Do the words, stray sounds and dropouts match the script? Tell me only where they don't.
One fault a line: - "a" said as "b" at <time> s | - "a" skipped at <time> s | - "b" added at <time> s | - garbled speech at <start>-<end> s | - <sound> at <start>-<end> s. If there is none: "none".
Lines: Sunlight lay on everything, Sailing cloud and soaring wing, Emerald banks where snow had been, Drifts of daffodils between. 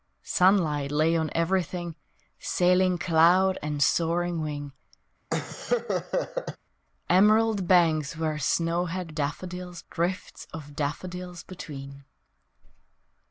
- laugh at 5.3-6.6 s
- "been" said as "daffodils" at 9.1 s